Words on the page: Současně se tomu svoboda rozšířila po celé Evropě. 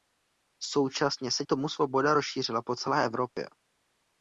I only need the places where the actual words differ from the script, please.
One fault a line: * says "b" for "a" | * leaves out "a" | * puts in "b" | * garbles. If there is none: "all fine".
all fine